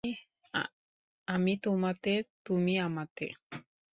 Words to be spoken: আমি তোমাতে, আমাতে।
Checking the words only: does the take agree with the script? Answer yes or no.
no